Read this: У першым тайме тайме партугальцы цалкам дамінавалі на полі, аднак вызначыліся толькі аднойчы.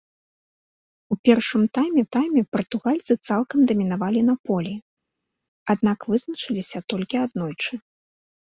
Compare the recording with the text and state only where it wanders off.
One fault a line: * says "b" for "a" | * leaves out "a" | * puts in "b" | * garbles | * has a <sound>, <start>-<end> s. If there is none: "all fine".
all fine